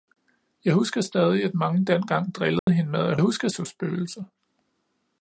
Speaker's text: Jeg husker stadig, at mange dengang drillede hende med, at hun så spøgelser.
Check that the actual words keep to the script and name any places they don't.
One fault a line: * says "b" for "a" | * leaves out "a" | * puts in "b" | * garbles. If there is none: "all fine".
* says "husker" for "hun"